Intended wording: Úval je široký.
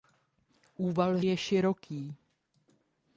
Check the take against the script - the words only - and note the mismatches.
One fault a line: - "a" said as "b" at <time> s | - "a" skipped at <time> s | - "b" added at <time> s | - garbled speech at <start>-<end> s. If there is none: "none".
none